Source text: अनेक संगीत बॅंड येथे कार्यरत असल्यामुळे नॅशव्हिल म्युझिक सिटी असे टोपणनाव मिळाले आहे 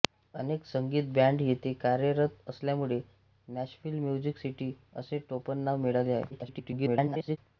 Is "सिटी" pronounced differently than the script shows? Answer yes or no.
no